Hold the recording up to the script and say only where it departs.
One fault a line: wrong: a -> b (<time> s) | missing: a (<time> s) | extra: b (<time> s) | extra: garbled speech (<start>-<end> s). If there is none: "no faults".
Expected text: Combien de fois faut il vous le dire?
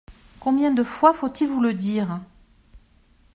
no faults